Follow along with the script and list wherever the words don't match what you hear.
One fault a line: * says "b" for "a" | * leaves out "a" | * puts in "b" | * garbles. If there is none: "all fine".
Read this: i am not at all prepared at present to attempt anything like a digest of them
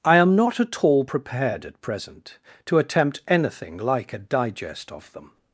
all fine